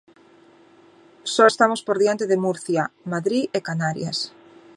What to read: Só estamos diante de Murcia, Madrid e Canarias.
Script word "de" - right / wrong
right